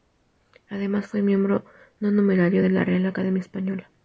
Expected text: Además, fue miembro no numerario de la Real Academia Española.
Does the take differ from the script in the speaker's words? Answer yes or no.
no